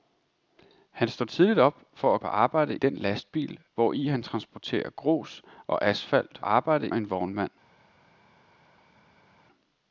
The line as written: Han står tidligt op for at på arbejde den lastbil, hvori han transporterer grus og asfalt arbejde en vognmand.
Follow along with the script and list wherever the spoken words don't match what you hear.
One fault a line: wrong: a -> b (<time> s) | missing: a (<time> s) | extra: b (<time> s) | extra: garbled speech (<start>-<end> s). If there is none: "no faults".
no faults